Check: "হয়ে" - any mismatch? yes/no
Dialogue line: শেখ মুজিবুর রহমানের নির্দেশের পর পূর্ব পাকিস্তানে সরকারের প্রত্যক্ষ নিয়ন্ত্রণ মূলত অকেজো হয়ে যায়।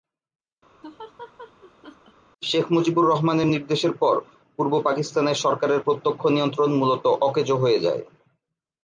no